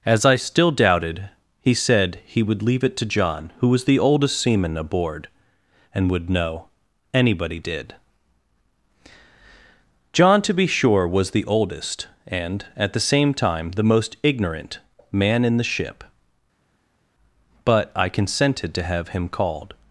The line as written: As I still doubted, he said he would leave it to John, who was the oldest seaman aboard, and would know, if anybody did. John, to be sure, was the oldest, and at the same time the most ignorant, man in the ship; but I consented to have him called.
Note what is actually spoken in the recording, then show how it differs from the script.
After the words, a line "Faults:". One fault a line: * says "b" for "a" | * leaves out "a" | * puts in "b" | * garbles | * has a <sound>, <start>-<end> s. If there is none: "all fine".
As I still doubted, he said he would leave it to John, who was the oldest seaman aboard, and would know, anybody did. John, to be sure, was the oldest, and at the same time the most ignorant, man in the ship; but I consented to have him called.
Faults:
* leaves out "if"